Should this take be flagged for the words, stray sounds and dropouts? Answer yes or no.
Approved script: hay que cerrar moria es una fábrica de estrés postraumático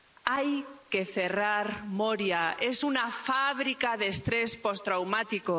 no